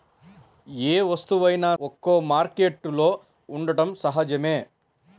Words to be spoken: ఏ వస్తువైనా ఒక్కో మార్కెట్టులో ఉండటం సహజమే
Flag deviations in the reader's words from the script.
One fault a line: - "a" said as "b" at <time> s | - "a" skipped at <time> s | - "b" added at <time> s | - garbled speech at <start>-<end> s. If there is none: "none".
none